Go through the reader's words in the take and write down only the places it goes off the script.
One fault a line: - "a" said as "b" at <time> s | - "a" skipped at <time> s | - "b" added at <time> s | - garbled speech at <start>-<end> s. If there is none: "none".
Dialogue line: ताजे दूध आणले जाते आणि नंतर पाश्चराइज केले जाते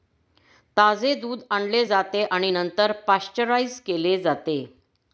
none